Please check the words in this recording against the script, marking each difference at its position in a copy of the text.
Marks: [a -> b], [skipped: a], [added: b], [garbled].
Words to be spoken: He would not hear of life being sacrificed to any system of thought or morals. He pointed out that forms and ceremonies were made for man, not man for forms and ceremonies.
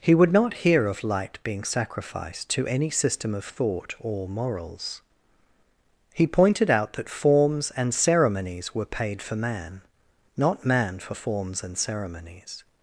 He would not hear of [life -> light] being sacrificed to any system of thought or morals. He pointed out that forms and ceremonies were [made -> paid] for man, not man for forms and ceremonies.